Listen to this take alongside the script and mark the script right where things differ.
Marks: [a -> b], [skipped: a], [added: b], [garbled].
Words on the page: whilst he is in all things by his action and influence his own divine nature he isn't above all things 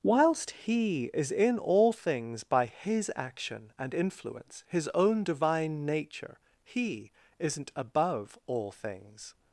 whilst he is in all things by his action and influence his own divine nature he isn't above all things